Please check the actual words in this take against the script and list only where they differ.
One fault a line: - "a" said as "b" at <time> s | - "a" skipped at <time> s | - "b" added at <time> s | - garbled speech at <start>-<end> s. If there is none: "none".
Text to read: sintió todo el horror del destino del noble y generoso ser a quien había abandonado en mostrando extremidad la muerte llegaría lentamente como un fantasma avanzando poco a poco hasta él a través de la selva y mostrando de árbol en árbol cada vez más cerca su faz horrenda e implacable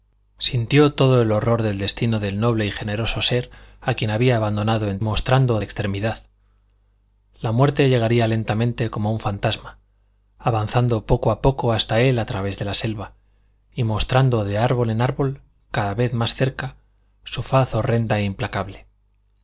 none